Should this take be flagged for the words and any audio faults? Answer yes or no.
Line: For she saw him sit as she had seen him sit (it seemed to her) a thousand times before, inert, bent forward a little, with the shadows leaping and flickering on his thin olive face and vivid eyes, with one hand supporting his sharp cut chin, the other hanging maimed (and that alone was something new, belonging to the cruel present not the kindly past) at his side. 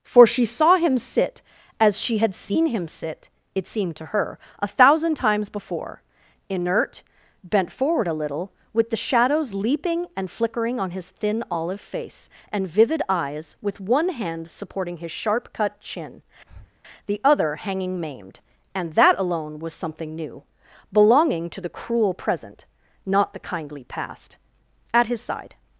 yes